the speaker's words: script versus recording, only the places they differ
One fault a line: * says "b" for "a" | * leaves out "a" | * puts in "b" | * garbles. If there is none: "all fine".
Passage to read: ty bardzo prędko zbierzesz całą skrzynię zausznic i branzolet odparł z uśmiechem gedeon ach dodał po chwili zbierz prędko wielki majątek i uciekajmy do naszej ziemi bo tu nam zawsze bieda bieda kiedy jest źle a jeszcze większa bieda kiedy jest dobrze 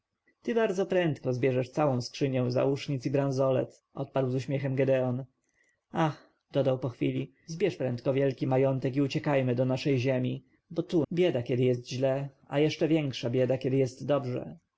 * leaves out "nam zawsze bieda"